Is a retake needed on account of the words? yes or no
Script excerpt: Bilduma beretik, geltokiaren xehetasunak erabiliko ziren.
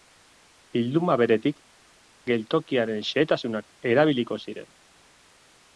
no